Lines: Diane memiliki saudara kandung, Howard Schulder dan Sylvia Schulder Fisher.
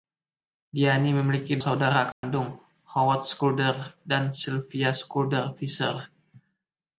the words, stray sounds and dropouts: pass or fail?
fail